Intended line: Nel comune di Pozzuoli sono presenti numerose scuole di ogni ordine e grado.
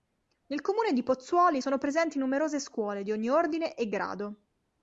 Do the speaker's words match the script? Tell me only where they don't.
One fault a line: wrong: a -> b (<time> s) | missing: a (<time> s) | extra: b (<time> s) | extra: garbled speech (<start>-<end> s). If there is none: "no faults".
no faults